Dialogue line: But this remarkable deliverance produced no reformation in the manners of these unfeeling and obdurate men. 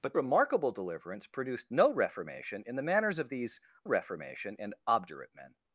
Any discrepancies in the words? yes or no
yes